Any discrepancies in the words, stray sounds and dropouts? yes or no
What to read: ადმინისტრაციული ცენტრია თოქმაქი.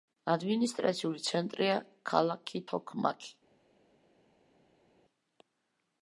yes